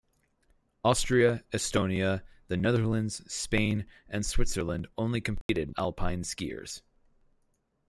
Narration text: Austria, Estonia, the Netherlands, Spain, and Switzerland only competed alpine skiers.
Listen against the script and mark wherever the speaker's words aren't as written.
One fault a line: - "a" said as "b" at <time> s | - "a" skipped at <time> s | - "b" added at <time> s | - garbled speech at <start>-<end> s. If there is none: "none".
none